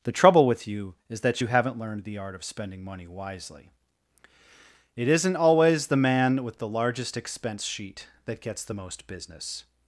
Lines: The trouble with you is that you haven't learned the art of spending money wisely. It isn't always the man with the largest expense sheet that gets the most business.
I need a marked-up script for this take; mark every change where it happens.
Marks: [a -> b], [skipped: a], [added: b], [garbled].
The trouble with you is that you haven't learned the art of spending money wisely. It isn't always the man with the largest expense sheet that gets the most business.